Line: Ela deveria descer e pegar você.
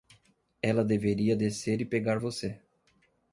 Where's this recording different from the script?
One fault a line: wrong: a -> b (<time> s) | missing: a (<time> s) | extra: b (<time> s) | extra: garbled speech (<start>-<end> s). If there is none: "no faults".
no faults